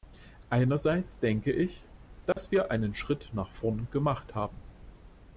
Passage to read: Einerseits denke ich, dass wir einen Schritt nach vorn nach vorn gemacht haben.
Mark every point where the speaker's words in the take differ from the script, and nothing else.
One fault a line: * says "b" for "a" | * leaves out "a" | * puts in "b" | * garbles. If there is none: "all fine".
* leaves out "nach vorn"